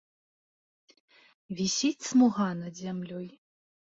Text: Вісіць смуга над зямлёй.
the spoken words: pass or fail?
pass